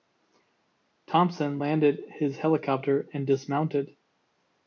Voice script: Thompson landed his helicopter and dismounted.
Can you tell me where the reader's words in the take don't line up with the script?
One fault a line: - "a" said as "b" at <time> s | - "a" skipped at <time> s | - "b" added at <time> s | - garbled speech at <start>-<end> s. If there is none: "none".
none